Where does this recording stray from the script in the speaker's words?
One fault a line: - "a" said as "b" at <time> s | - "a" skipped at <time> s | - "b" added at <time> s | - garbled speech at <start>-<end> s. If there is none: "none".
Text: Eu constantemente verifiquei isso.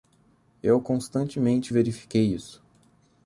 none